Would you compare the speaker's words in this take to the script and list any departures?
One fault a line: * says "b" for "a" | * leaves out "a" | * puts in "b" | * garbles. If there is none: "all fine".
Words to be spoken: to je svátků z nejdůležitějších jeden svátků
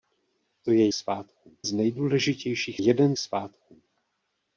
all fine